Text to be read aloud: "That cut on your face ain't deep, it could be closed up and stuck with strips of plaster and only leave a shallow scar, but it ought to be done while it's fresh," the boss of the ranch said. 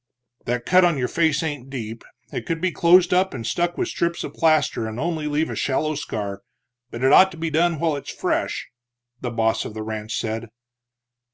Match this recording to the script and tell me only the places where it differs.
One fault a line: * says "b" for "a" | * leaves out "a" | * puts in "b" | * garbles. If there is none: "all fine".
all fine